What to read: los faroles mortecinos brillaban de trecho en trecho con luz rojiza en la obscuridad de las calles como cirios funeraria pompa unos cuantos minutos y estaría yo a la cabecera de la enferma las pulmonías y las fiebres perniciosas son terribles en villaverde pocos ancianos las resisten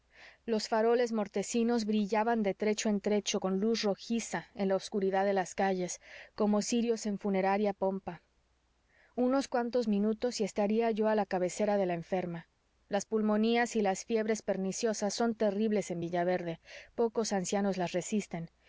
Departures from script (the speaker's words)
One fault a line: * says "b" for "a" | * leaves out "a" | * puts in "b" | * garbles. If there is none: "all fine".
* puts in "en"